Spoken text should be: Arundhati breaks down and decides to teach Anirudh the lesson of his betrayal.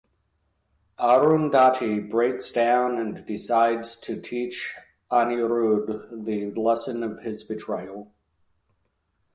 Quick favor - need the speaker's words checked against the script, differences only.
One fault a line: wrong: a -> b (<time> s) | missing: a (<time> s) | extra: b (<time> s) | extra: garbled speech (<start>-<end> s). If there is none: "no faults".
no faults